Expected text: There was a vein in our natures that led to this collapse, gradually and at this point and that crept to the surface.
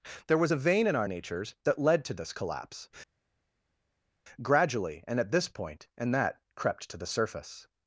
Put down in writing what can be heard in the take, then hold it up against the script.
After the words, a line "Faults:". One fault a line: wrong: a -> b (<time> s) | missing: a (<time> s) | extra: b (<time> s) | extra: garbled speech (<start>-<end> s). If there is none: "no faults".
There was a vein in our natures that led to this collapse, gradually and at this point and that crept to the surface.
Faults:
no faults